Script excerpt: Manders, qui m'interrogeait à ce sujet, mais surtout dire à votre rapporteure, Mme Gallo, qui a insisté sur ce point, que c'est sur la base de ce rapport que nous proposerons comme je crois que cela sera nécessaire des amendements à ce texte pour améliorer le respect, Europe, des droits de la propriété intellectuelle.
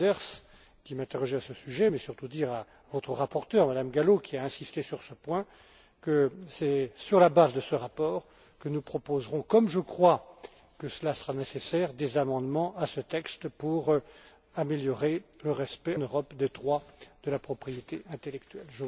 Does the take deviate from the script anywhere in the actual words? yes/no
no